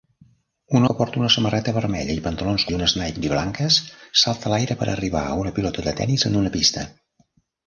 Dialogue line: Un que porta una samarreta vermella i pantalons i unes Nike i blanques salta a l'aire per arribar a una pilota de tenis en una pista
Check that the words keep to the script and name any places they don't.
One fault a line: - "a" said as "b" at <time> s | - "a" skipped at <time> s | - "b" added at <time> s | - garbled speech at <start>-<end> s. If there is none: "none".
none